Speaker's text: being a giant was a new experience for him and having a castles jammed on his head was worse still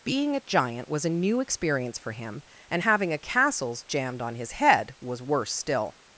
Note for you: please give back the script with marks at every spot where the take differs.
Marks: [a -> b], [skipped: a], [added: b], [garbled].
being a giant was a new experience for him and having a castles jammed on his head was worse still